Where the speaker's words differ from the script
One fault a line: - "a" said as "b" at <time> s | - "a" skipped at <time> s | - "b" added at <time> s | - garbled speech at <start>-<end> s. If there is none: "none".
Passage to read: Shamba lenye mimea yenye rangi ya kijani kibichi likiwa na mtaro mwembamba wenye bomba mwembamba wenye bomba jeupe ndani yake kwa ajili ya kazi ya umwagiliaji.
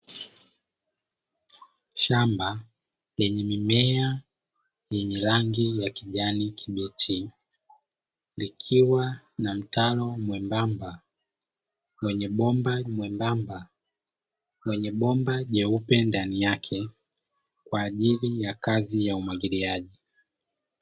none